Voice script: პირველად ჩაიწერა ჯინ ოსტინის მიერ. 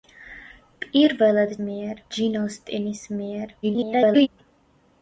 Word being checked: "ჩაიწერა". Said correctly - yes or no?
no